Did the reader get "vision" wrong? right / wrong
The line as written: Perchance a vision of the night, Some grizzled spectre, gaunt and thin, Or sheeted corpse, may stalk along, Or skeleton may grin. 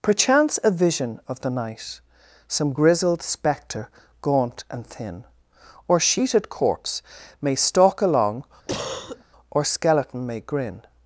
right